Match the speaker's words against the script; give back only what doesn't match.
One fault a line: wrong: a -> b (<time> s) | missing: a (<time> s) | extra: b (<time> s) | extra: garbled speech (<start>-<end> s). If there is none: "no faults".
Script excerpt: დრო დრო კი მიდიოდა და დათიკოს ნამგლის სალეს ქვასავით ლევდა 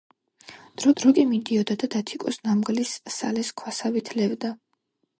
no faults